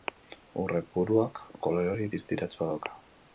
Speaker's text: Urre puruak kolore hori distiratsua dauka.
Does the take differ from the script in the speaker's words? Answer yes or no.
no